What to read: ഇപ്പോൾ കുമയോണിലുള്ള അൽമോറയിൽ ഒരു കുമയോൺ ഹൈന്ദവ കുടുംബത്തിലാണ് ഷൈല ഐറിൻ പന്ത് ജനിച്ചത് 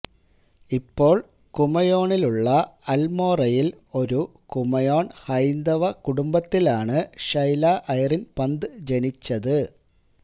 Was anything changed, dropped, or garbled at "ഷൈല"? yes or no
no